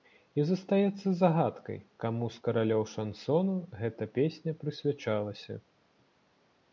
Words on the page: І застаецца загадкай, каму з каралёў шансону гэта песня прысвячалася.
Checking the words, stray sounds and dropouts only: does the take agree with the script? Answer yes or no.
yes